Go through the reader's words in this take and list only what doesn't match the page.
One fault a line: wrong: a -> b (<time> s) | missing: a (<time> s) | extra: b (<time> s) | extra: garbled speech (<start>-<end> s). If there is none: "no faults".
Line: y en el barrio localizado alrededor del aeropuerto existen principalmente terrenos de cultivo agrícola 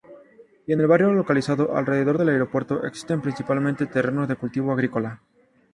no faults